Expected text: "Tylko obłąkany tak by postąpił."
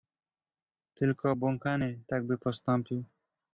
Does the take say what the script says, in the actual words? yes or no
yes